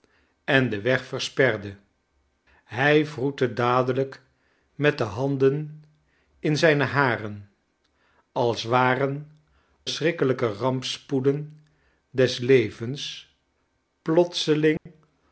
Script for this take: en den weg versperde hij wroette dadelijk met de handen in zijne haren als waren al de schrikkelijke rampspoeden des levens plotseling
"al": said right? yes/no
no